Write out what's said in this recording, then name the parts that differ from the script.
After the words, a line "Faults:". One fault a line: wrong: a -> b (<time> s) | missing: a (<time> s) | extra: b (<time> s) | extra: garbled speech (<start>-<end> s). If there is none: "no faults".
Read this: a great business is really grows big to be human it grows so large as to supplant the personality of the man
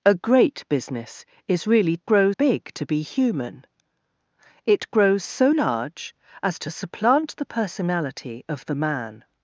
a great business is really grows big to be human it grows so large as to supplant the personality of the man
Faults:
no faults